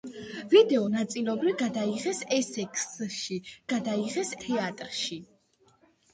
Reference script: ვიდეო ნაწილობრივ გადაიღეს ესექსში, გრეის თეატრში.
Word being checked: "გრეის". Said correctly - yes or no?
no